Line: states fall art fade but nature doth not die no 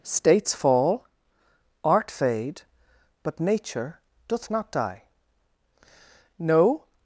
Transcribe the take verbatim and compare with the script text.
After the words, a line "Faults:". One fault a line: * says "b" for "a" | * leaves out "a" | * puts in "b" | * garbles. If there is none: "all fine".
states fall art fade but nature doth not die no
Faults:
all fine